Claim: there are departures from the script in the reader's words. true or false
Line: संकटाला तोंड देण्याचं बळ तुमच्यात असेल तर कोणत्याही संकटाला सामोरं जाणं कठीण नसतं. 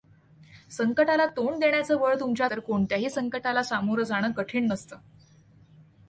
true